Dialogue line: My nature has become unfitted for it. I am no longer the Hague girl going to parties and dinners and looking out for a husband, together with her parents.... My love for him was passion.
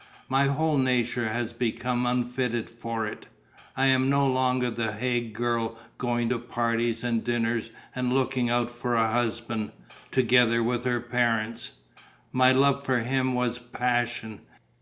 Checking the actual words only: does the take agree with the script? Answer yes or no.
no